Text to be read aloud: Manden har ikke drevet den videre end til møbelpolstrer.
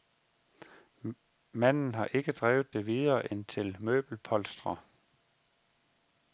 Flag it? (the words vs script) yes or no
yes